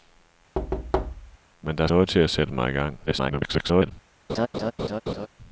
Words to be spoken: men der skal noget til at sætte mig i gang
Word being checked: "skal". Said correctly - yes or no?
no